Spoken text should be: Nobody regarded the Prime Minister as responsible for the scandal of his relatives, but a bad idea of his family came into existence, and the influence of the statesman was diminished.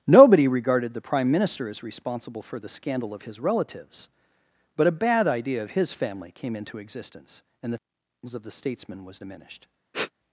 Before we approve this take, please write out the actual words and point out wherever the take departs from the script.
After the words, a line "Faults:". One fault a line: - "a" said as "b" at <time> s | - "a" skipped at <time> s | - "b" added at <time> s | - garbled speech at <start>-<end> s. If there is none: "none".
Nobody regarded the Prime Minister as responsible for the scandal of his relatives, but a bad idea of his family came into existence, and the of the statesman was diminished.
Faults:
- "influence" skipped at 7.8 s